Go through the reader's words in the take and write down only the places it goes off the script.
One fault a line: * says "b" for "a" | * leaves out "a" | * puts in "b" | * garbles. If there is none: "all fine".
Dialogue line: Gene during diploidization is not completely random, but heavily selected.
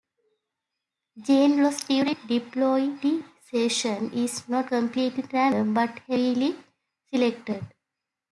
* puts in "loss"